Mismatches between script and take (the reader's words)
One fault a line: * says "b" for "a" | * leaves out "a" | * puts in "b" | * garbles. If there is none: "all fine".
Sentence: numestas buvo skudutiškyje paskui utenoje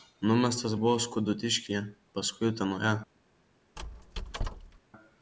all fine